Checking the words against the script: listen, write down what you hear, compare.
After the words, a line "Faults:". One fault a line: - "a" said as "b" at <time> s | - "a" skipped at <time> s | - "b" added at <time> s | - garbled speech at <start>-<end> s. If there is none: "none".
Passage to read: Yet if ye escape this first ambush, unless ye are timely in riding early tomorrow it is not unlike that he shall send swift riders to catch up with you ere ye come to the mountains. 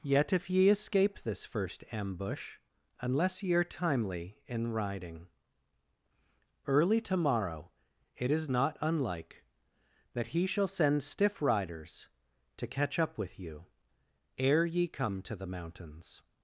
Yet if ye escape this first ambush, unless ye are timely in riding early tomorrow it is not unlike that he shall send stiff riders to catch up with you ere ye come to the mountains.
Faults:
- "swift" said as "stiff" at 11.0 s